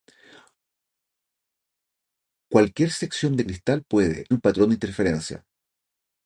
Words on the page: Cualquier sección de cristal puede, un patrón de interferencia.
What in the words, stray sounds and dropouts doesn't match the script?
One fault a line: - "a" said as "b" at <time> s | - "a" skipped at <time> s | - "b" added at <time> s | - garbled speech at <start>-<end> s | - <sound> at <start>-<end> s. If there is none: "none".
none